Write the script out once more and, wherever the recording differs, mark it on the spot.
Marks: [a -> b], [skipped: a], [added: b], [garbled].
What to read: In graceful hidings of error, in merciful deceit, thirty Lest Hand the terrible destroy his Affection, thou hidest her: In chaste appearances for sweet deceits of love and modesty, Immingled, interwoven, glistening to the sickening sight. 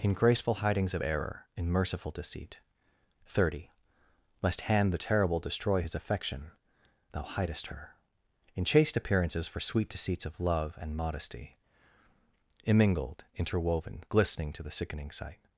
In graceful hidings of error, in merciful deceit, thirty Lest Hand the terrible destroy his Affection, thou hidest her: In chaste appearances for sweet deceits of love and modesty, Immingled, interwoven, glistening to the sickening sight.